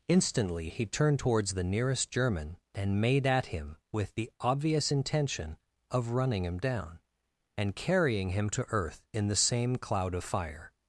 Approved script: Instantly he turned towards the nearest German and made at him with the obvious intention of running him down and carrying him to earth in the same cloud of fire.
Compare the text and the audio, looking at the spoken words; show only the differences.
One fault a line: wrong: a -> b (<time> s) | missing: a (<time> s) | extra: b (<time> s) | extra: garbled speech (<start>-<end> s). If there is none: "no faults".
no faults